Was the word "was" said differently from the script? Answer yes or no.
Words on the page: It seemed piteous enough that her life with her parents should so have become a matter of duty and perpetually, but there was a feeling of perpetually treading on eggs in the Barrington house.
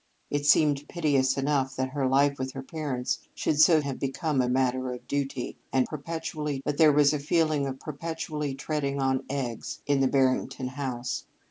no